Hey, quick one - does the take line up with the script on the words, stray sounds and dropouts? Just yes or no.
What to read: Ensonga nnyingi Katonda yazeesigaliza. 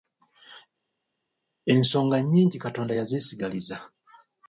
yes